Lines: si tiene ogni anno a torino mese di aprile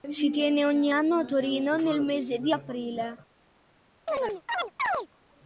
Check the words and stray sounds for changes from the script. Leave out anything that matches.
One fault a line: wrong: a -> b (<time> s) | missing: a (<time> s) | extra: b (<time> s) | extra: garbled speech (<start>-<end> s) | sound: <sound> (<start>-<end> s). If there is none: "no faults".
extra: nel (1.7 s)
sound: chirp (4.1-5.1 s)